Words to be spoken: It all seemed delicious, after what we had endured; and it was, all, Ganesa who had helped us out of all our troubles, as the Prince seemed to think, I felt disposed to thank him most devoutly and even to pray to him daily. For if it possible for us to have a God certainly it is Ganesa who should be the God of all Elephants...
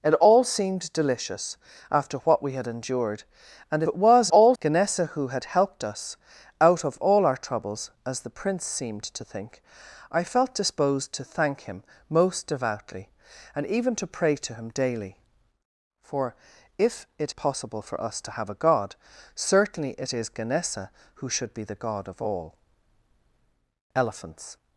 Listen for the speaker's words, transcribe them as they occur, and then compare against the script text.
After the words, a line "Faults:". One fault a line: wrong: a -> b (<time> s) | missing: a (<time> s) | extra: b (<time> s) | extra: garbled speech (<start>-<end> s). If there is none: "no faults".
It all seemed delicious, after what we had endured; and it was, all, Ganesa who had helped us out of all our troubles, as the Prince seemed to think, I felt disposed to thank him most devoutly and even to pray to him daily. For if it possible for us to have a God certainly it is Ganesa who should be the God of all Elephants...
Faults:
no faults